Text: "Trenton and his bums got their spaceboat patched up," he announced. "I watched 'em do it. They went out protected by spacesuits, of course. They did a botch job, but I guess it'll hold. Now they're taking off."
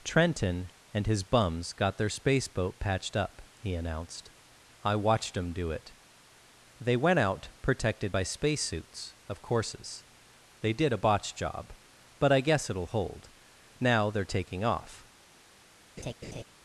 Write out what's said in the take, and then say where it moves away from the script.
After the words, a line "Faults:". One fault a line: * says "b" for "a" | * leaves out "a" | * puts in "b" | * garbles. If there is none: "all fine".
"Trenton and his bums got their spaceboat patched up," he announced. "I watched 'em do it. They went out protected by spacesuits, of courses. They did a botch job, but I guess it'll hold. Now they're taking off."
Faults:
* says "courses" for "course"